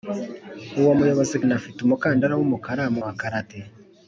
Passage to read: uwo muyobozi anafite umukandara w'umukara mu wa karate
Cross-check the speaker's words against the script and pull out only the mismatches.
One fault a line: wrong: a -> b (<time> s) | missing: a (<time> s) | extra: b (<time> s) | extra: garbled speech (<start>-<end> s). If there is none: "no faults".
no faults